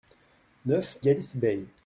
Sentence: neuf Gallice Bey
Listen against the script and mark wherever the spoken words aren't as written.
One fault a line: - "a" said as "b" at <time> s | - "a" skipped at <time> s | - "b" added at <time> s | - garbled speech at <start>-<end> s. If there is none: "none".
none